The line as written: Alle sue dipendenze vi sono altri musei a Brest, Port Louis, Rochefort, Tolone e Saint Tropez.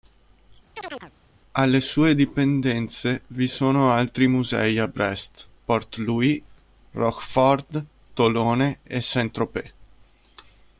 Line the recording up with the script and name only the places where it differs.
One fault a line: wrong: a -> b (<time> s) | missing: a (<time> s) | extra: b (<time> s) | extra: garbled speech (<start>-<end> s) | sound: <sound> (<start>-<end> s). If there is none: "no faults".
sound: chirp (0.7-1.1 s)